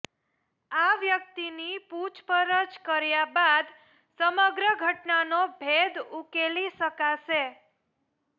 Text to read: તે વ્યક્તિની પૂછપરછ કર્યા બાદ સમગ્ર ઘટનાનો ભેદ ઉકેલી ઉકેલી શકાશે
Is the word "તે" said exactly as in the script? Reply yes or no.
no